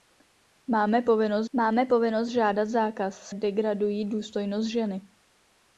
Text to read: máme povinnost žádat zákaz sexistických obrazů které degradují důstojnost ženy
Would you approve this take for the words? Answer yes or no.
no